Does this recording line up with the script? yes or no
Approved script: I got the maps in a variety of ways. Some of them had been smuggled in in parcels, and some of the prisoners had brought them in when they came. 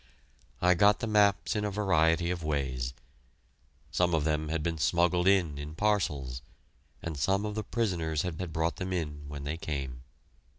no